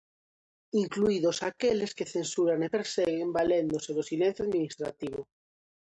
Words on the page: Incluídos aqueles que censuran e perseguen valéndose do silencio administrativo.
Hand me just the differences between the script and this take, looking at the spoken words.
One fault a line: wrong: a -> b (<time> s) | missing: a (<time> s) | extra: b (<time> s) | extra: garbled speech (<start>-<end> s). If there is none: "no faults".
no faults